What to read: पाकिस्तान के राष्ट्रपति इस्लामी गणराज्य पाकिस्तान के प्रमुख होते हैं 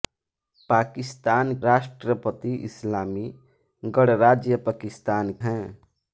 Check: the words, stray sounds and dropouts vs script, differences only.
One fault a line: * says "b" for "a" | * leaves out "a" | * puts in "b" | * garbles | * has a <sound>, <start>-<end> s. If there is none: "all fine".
* leaves out "के"
* leaves out "के प्रमुख होते"